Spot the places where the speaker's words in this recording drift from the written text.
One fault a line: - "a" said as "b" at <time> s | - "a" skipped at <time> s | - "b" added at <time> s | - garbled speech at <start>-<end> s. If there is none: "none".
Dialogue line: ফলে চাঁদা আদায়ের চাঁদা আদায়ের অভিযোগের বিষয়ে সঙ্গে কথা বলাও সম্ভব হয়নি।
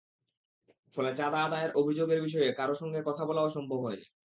- "চাঁদা আদায়ের" skipped at 1.7 s
- "কারও" added at 2.5 s